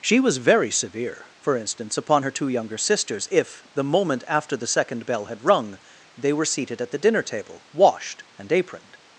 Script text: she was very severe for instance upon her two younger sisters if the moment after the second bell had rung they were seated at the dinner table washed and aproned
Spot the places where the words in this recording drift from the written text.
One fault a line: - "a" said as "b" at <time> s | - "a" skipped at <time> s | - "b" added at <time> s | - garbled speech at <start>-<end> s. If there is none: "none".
none